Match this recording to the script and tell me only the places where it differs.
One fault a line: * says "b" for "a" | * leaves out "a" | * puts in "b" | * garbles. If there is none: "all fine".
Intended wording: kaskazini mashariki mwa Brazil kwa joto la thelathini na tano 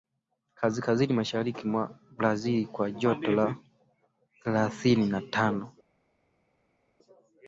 all fine